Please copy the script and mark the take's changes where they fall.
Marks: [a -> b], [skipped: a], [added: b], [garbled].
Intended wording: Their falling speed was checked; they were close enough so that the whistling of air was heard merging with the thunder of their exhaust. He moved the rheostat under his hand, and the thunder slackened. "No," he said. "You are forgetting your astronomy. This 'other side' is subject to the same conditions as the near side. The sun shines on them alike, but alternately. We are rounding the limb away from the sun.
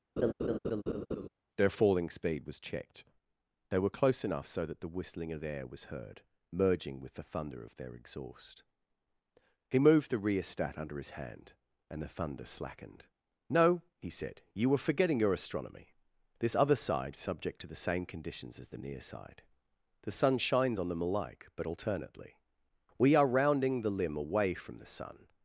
Their falling speed was checked; they were close enough so that the whistling of air was heard merging with the thunder of their exhaust. He moved the rheostat under his hand, and the thunder slackened. "No," he said. "You [are -> were] forgetting your astronomy. This 'other side' [skipped: is] subject to the same conditions as the near side. The sun shines on them alike, but alternately. We are rounding the limb away from the sun.